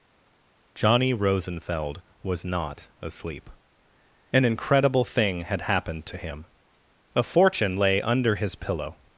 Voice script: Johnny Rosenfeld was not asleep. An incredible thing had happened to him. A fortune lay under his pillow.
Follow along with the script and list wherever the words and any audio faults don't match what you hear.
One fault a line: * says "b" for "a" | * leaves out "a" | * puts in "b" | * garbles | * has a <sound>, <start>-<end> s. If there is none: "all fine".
all fine